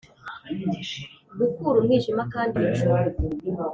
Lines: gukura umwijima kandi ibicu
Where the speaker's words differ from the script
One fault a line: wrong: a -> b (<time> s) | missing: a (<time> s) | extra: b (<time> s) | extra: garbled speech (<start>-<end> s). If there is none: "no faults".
no faults